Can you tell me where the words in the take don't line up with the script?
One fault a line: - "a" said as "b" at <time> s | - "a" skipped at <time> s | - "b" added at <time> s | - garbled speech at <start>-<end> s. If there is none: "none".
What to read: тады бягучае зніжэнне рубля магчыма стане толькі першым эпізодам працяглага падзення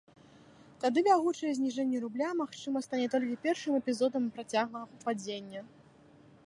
none